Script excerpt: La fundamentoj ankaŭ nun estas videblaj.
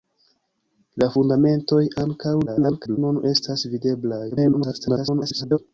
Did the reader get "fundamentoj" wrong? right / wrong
right